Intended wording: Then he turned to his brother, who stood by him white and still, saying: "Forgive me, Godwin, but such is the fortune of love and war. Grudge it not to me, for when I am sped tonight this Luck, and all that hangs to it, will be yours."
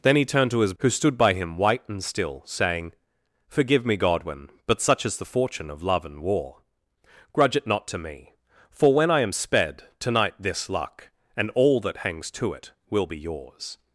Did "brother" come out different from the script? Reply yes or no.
yes